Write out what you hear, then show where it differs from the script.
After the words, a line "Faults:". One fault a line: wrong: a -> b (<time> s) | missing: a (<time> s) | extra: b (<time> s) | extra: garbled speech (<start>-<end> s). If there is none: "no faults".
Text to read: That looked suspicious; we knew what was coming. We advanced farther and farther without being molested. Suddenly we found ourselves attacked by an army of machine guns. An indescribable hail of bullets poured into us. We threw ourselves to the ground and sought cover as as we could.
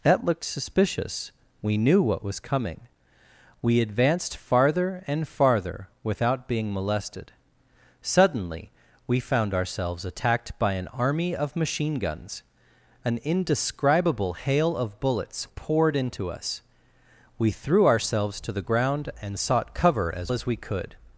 That looked suspicious; we knew what was coming. We advanced farther and farther without being molested. Suddenly we found ourselves attacked by an army of machine guns. An indescribable hail of bullets poured into us. We threw ourselves to the ground and sought cover as as we could.
Faults:
no faults